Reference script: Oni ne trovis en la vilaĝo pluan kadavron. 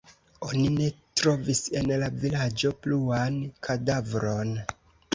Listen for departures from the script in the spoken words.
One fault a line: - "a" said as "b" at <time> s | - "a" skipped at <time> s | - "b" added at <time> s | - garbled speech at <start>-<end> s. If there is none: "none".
none